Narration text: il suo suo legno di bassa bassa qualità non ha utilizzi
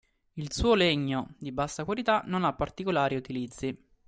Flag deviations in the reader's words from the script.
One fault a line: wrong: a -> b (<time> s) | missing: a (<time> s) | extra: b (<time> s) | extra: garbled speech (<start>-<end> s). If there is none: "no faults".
missing: suo (0.7 s)
missing: bassa (1.9 s)
extra: particolari (2.5 s)